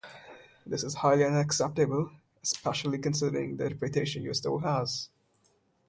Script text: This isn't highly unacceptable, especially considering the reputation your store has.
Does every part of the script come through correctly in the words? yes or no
no